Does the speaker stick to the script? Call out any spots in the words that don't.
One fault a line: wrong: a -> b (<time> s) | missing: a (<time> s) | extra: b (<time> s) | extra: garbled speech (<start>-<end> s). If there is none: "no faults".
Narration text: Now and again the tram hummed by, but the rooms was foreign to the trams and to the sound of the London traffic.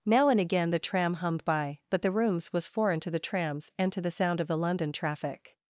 no faults